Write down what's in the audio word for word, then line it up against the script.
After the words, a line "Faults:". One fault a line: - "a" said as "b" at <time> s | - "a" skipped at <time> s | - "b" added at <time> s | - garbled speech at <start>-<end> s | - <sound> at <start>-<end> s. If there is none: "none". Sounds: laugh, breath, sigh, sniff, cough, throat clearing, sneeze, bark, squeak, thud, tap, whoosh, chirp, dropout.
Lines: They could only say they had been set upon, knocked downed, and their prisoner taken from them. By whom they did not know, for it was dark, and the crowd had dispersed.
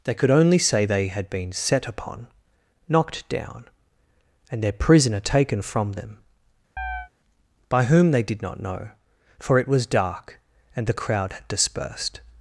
They could only say they had been set upon, knocked down, and their prisoner taken from them. By whom they did not know, for it was dark, and the crowd had dispersed.
Faults:
- "downed" said as "down" at 3.3 s
- chirp at 6.8-7.1 s